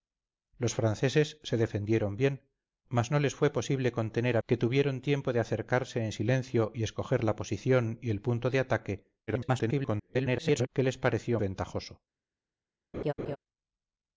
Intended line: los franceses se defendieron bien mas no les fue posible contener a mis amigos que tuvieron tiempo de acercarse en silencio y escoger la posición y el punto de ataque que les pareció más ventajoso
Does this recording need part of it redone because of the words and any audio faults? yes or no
yes